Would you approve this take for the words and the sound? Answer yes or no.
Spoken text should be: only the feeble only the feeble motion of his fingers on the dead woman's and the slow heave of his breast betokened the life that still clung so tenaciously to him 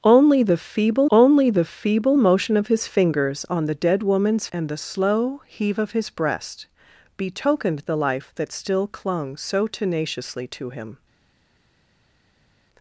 yes